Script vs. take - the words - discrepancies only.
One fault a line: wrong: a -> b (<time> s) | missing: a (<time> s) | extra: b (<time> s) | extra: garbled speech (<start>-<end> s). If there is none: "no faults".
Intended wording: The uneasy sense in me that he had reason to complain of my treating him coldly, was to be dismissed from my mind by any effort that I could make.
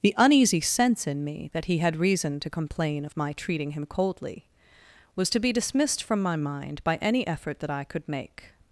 no faults